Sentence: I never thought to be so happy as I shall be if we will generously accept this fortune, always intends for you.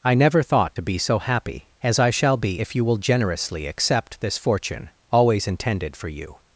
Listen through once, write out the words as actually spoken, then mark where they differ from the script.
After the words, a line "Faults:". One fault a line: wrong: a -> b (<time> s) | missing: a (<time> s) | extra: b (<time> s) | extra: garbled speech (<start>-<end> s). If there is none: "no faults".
I never thought to be so happy as I shall be if you will generously accept this fortune, always intended for you.
Faults:
wrong: we -> you (2.7 s)
wrong: intends -> intended (5.5 s)